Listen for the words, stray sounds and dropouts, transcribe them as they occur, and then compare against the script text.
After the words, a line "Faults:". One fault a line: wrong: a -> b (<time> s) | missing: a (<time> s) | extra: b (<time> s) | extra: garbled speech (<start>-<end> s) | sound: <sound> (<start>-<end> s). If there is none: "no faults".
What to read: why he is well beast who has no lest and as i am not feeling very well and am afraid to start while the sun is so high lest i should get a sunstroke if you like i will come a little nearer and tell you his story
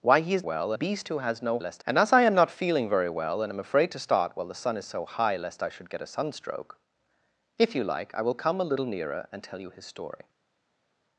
why he is well beast who has no lest and as i am not feeling very well and am afraid to start while the sun is so high lest i should get a sunstroke if you like i will come a little nearer and tell you his story
Faults:
no faults